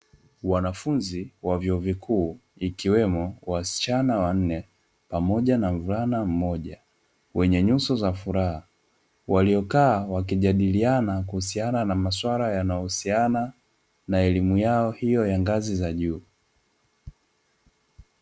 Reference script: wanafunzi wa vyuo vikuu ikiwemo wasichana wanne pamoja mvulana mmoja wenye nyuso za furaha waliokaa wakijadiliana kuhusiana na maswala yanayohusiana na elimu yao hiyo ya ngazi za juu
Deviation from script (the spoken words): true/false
true